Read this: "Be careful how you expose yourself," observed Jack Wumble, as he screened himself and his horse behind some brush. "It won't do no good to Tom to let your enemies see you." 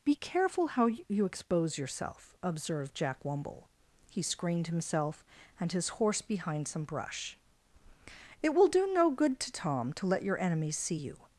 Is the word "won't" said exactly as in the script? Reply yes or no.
no